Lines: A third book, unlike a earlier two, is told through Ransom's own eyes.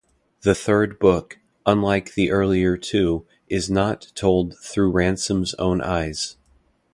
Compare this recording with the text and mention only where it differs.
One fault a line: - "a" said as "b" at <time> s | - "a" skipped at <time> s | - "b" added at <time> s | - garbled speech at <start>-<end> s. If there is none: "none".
- "A" said as "The" at 0.4 s
- "a" said as "the" at 2.1 s
- "not" added at 3.7 s